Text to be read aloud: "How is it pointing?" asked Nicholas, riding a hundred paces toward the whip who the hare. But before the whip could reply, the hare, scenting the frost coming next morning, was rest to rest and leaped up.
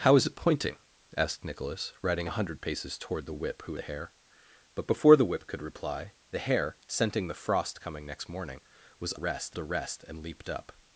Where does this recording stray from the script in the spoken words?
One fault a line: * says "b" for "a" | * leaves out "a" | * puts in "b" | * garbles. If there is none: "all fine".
all fine